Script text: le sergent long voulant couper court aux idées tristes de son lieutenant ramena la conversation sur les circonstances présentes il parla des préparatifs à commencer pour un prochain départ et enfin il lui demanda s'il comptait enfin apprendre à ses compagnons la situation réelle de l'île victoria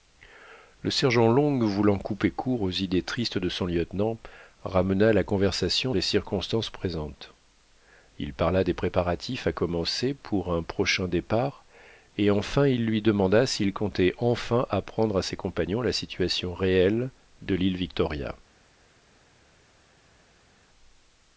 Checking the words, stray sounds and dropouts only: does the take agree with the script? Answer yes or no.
no